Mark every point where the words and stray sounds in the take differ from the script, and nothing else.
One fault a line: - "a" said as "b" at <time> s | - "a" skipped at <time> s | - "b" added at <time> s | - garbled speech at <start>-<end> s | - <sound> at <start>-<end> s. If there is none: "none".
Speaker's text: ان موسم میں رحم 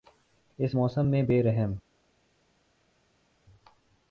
- "ان" said as "اس" at 0.6 s
- "بے" added at 1.2 s